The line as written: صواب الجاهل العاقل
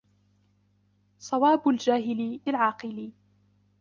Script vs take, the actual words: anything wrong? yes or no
no